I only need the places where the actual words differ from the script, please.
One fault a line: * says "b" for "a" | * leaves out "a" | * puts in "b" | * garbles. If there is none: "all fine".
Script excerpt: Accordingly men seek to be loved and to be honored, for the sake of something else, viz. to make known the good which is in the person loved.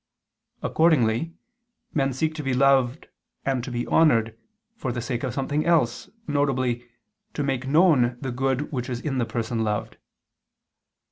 all fine